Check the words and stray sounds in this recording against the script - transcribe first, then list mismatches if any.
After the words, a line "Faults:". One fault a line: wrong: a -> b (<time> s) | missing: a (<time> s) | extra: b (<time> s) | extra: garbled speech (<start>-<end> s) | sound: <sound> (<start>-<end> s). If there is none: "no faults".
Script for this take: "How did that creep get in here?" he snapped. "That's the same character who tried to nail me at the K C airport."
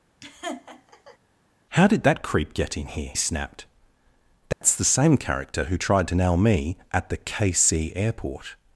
"How did that creep get in here?" snapped. "That's the same character who tried to nail me at the K C airport."
Faults:
sound: laugh (0.2-1.2 s)
missing: he (3.1 s)
sound: dropout (4.5-4.6 s)